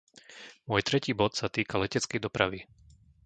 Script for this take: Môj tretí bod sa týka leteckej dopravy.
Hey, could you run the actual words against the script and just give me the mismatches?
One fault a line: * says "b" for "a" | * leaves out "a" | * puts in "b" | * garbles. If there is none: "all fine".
all fine